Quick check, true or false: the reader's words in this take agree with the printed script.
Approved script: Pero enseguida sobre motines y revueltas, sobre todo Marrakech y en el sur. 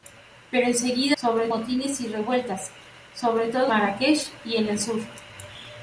true